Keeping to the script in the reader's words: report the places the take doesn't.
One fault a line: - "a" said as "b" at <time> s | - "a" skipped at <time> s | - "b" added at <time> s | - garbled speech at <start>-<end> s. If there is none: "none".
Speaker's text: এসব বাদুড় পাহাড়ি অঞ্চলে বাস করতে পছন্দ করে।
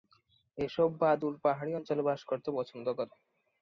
none